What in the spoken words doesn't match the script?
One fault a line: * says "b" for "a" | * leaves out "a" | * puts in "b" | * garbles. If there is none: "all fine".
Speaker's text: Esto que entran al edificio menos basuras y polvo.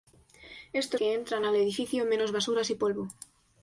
all fine